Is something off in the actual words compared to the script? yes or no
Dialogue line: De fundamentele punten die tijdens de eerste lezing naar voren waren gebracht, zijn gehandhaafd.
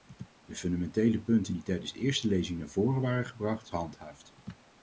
yes